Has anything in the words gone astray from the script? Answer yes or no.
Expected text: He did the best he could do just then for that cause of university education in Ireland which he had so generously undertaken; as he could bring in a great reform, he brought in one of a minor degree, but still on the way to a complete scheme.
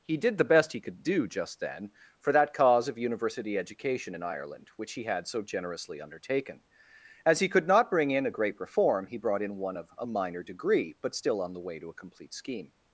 yes